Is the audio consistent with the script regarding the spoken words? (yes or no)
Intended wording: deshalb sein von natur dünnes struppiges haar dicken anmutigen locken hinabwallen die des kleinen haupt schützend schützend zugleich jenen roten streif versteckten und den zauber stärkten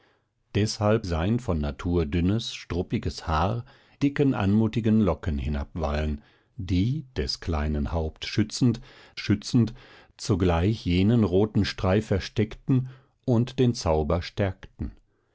yes